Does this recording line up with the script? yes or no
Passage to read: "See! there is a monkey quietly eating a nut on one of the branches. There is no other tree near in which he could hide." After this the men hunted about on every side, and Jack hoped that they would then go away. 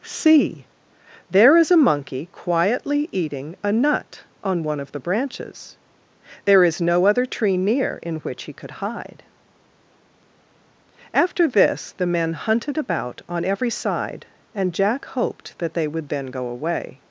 yes